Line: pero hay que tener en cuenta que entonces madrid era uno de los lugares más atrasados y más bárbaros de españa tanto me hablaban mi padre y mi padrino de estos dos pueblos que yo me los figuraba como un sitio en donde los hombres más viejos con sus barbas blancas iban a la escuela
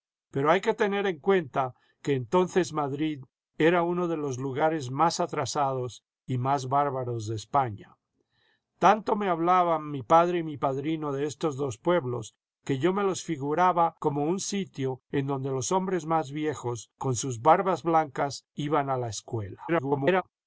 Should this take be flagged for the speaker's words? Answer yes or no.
yes